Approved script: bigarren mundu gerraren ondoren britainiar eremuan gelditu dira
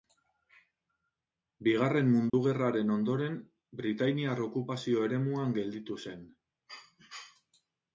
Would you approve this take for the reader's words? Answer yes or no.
no